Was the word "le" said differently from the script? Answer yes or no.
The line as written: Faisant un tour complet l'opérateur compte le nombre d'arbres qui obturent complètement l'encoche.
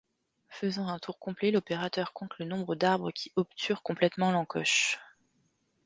no